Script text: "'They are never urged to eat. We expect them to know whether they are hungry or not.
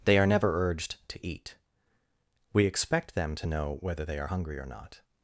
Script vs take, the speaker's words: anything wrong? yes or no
no